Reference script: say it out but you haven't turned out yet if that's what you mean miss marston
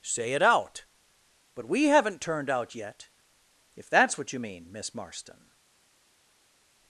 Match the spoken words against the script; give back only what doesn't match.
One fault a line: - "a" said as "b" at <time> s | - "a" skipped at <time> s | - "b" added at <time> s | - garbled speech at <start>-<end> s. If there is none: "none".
- "you" said as "we" at 1.7 s